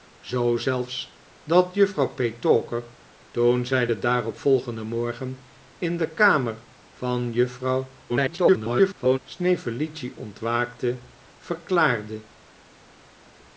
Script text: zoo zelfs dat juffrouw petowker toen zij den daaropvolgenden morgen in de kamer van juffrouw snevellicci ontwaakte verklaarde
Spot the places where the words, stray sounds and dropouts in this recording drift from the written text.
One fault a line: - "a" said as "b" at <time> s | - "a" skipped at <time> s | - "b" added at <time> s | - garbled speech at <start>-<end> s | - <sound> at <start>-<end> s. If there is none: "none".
- garbled speech at 8.1-9.2 s